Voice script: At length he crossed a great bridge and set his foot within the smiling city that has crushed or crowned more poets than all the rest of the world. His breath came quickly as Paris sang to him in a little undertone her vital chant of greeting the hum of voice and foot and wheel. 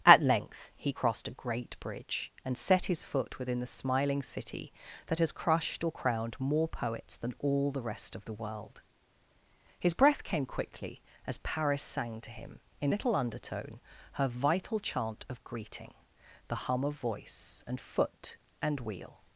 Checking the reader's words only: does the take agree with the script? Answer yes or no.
no